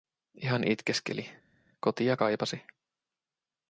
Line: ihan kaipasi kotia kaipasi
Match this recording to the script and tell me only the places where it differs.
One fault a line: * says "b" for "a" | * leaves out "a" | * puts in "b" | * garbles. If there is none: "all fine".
* says "itkeskeli" for "kaipasi"